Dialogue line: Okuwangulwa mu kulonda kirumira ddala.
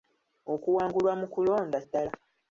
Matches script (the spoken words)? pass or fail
fail